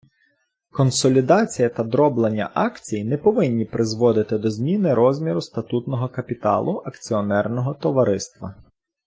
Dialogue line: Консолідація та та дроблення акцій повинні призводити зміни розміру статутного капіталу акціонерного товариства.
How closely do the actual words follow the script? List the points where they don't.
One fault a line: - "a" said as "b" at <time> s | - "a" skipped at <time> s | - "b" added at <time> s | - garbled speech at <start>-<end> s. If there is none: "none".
- "та" skipped at 1.8 s
- "не" added at 3.0 s
- "до" added at 4.4 s